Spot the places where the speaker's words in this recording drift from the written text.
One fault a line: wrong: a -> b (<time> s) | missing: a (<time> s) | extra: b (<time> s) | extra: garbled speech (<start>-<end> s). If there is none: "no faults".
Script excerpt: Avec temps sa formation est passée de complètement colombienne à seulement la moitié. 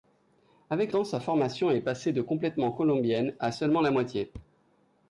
no faults